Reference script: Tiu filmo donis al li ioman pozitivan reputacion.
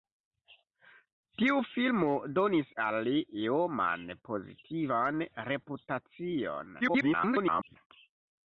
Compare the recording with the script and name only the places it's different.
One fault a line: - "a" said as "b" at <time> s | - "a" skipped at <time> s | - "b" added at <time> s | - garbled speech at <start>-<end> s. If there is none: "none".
- garbled speech at 6.8-7.8 s